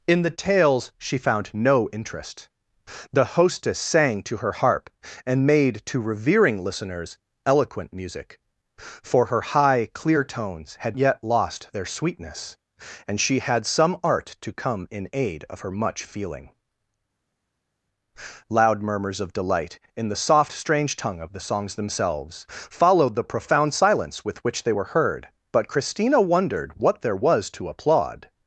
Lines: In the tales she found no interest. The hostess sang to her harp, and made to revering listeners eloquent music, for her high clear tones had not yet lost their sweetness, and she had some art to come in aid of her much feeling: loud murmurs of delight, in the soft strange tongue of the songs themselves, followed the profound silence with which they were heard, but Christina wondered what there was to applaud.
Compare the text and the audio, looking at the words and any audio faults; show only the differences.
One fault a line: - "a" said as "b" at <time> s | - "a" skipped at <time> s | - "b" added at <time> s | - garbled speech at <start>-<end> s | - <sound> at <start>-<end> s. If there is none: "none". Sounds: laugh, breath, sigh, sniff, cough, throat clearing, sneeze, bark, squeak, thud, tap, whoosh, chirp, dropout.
- "not" skipped at 11.0 s